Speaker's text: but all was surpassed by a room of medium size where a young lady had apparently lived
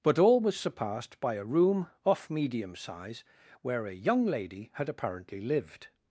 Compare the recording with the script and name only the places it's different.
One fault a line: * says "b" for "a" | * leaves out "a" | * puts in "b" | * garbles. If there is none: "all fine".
* says "off" for "of"